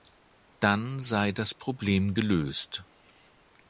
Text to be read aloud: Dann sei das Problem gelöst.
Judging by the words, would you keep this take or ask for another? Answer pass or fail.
pass